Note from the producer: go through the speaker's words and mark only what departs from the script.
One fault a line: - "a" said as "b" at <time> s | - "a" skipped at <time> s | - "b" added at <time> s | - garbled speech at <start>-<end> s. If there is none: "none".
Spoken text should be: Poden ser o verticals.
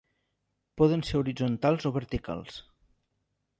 - "horitzontals" added at 1.2 s